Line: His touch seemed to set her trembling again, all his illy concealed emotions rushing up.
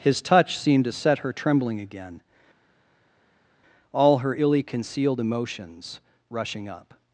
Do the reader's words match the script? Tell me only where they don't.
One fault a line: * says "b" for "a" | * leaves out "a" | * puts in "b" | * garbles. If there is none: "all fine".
* says "her" for "his"